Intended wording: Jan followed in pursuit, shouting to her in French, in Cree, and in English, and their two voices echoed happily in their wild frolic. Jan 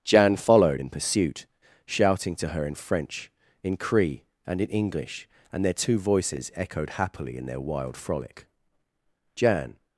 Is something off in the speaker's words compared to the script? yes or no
no